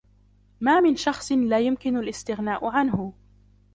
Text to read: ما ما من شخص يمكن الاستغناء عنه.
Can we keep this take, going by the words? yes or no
no